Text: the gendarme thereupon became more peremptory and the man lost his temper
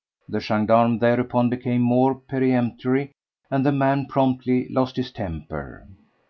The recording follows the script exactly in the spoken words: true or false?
false